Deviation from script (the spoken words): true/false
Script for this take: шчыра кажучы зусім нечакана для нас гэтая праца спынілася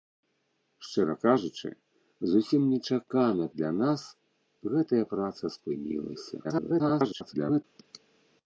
true